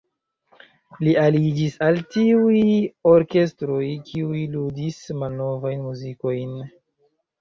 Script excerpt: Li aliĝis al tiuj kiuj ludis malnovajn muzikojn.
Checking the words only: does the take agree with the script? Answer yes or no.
no